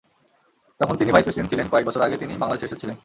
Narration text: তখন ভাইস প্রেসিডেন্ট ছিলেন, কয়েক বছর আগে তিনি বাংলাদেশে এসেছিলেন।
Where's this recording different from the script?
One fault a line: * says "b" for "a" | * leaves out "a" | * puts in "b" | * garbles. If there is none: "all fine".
* puts in "তিনি"